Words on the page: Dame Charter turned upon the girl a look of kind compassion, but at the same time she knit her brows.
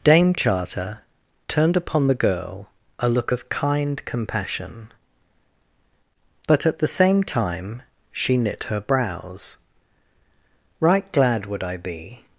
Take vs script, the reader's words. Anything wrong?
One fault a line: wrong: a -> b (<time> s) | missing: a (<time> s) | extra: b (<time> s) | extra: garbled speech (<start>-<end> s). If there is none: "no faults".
extra: Right glad would I be (10.8 s)